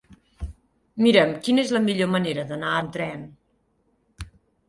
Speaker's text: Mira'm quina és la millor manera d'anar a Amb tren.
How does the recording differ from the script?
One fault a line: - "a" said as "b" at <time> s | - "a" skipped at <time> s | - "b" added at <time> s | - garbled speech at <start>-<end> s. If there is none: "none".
none